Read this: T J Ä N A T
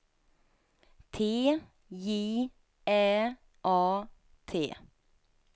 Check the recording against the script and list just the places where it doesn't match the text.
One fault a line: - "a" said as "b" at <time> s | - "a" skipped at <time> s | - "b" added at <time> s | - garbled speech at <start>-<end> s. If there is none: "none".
- "N" skipped at 3.4 s